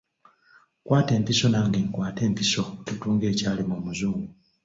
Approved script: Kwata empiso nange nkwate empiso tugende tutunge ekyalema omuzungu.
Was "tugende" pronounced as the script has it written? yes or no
no